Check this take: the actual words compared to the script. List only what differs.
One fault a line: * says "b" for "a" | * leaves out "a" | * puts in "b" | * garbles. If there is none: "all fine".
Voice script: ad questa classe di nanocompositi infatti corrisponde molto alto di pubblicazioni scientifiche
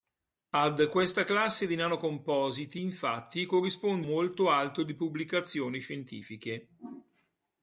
all fine